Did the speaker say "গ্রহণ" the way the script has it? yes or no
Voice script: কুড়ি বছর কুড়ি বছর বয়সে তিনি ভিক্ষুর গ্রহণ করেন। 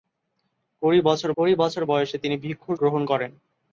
yes